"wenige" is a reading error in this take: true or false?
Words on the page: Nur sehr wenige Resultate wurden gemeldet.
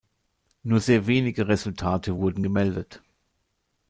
false